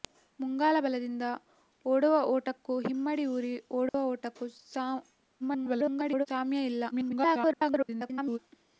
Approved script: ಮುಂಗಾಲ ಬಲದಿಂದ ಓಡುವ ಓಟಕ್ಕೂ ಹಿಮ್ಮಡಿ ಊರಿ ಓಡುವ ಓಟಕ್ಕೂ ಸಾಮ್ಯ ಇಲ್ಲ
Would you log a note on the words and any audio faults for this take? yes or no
yes